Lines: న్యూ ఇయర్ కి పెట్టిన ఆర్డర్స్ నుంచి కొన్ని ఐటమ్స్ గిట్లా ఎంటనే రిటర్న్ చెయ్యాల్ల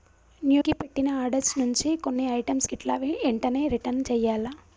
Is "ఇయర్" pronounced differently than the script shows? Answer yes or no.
yes